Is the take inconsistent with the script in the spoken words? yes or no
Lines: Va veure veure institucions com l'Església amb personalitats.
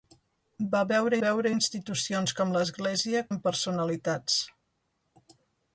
no